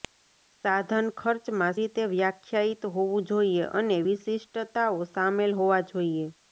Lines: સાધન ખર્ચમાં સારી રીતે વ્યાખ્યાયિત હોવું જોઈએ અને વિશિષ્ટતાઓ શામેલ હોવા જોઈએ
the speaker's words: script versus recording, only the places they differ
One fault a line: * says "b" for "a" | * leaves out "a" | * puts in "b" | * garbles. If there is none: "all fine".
* leaves out "સારી"